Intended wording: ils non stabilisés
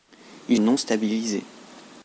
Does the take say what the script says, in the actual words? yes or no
yes